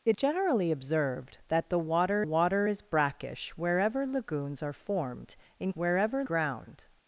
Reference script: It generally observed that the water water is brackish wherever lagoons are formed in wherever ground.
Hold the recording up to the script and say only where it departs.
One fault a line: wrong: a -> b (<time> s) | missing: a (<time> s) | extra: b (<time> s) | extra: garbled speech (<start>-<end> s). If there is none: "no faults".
no faults